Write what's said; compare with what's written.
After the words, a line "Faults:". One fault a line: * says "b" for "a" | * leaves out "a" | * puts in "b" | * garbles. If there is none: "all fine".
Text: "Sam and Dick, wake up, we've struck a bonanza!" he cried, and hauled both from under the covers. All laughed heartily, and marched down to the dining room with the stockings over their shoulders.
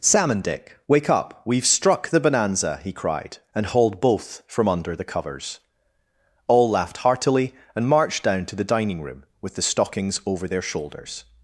"Sam and Dick, wake up, we've struck the bonanza!" he cried, and hauled both from under the covers. All laughed heartily, and marched down to the dining room with the stockings over their shoulders.
Faults:
* says "the" for "a"